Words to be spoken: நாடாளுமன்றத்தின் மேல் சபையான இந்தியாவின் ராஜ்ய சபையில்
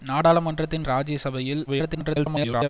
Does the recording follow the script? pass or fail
fail